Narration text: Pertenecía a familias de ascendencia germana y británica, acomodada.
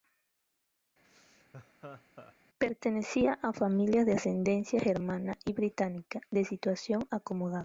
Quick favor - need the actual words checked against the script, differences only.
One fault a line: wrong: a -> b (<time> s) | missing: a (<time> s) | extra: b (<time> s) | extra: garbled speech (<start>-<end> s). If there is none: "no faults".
extra: de situación (6.3 s)